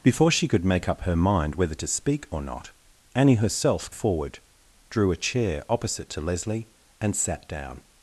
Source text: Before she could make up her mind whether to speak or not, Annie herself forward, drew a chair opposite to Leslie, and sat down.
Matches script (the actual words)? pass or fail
pass